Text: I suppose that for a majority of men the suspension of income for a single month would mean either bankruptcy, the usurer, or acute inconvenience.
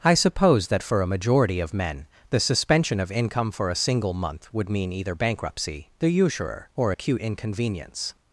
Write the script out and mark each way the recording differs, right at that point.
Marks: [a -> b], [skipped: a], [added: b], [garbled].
I suppose that for a majority of men the suspension of income for a single month would mean either bankruptcy, the usurer, or acute inconvenience.